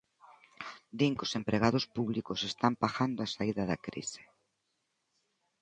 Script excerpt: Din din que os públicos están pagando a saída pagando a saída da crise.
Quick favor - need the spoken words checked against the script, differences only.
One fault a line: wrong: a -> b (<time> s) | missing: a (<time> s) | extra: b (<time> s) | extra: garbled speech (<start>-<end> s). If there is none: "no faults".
missing: din (1.1 s)
extra: empregados (1.4 s)
missing: pagando a saída (3.6 s)